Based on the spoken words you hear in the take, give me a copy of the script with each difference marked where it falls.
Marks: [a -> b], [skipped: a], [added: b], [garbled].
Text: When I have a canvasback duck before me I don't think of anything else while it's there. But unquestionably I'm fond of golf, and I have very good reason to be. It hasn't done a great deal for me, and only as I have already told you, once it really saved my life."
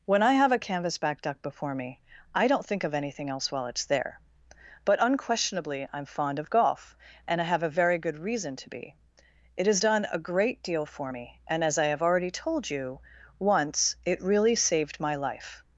When I have a canvasback duck before me I don't think of anything else while it's there. But unquestionably I'm fond of golf, and I have [added: a] very good reason to be. It [hasn't -> has] done a great deal for me, and [skipped: only] as I have already told you, once it really saved my life."